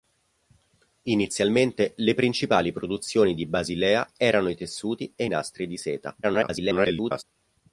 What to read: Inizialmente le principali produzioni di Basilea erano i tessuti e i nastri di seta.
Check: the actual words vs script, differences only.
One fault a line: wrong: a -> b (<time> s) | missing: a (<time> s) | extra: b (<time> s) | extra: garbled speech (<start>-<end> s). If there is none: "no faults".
extra: garbled speech (6.2-7.2 s)